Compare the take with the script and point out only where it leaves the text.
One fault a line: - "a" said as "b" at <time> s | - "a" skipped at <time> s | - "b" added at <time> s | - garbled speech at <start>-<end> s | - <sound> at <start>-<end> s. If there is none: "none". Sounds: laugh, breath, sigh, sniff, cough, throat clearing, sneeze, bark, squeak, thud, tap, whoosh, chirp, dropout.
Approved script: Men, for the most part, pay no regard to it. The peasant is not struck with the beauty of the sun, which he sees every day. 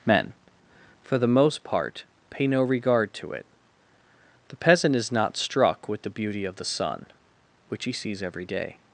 none